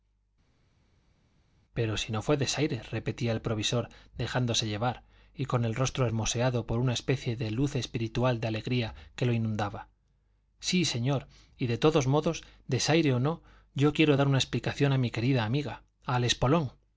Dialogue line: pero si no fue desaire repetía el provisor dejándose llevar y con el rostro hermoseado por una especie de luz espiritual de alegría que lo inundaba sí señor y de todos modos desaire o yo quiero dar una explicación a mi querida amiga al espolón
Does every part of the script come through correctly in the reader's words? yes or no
no